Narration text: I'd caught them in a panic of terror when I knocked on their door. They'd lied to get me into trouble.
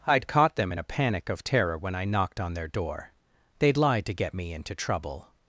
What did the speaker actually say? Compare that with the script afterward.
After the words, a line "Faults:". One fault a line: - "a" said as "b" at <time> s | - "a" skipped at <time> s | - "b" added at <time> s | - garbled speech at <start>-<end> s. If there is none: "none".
I'd caught them in a panic of terror when I knocked on their door. They'd lied to get me into trouble.
Faults:
none